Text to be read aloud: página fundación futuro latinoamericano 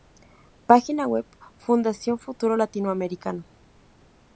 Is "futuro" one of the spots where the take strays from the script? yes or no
no